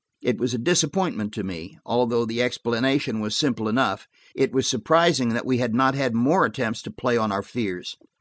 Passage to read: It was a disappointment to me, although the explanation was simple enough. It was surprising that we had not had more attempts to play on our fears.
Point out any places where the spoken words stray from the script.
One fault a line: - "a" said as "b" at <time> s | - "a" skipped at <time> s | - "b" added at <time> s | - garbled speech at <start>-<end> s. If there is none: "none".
none